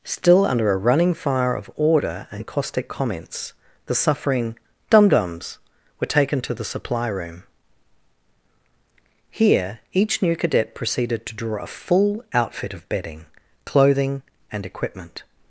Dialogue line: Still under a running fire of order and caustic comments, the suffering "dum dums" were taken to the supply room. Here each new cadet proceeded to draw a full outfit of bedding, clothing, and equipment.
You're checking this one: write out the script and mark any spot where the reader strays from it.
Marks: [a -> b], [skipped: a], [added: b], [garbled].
Still under a running fire of order and caustic comments, the suffering "dum dums" were taken to the supply room. Here each new cadet proceeded to draw a full outfit of bedding, clothing, and equipment.